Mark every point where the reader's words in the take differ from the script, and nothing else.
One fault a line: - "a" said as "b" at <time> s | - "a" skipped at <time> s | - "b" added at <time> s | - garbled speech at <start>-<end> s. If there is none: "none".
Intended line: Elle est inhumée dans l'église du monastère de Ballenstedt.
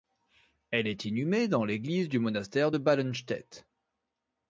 none